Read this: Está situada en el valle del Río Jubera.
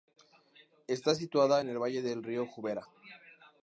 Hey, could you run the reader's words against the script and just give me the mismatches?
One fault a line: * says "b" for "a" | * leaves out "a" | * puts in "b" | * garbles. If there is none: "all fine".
all fine